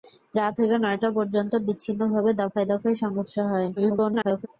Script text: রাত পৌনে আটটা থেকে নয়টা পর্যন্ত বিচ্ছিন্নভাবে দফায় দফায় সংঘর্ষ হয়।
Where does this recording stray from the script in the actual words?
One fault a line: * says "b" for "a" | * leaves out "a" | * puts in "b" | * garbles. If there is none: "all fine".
* leaves out "পৌনে আটটা"
* garbles